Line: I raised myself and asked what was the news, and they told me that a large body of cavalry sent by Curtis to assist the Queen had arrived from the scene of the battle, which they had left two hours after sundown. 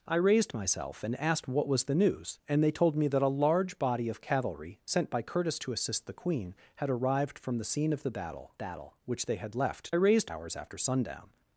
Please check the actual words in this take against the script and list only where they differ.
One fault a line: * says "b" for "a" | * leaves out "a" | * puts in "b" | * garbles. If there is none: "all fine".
* puts in "battle"
* says "raised" for "two"